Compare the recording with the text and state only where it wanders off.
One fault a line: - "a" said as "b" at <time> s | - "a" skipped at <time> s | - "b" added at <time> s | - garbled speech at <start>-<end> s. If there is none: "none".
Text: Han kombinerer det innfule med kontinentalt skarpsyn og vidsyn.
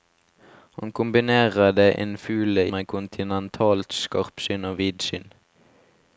none